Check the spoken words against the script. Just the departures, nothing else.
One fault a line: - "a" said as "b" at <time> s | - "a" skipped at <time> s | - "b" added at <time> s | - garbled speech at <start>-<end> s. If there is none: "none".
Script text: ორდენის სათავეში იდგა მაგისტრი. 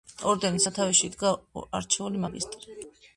- "არჩეული" added at 1.8 s